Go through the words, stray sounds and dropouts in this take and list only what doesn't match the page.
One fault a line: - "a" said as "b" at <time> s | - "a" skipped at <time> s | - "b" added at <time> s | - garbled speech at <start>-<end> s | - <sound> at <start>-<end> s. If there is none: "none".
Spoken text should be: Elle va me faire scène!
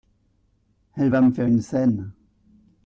- "une" added at 1.5 s